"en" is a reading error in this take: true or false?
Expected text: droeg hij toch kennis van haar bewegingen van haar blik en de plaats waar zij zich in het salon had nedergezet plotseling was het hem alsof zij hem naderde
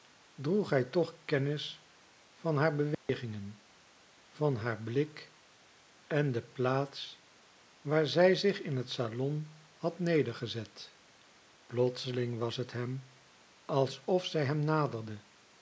false